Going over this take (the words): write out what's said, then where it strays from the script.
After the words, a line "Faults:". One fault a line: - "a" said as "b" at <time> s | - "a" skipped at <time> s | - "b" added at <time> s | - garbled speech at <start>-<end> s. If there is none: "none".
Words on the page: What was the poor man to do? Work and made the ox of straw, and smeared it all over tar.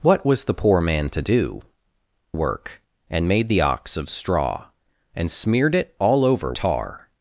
What was the poor man to do? Work and made the ox of straw, and smeared it all over tar.
Faults:
none